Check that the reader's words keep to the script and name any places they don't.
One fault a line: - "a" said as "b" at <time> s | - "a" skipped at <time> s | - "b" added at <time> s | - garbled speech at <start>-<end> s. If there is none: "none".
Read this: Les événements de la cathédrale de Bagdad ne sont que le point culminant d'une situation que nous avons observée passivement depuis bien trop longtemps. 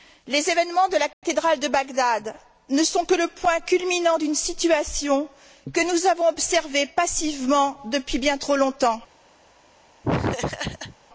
none